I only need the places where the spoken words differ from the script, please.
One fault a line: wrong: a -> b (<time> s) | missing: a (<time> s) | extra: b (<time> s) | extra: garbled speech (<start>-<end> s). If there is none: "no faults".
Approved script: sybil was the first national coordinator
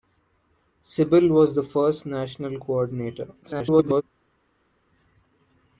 extra: garbled speech (3.4-4.0 s)